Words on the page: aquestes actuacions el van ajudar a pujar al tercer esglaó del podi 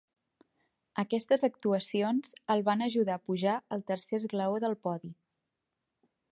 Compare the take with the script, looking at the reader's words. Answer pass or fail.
pass